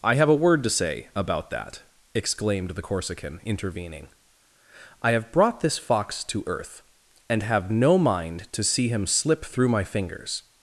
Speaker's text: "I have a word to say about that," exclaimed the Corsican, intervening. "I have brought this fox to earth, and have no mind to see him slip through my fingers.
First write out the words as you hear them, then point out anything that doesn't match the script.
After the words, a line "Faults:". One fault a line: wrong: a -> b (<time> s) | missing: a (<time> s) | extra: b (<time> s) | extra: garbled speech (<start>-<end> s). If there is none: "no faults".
"I have a word to say about that," exclaimed the Corsican, intervening. "I have brought this fox to earth, and have no mind to see him slip through my fingers.
Faults:
no faults